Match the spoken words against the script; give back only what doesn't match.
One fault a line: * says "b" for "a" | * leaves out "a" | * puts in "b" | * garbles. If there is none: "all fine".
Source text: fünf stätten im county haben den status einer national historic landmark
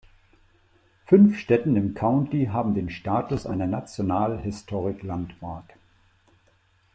all fine